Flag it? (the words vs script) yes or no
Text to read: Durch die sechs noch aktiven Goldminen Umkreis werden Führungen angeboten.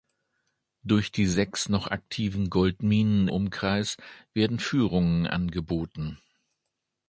no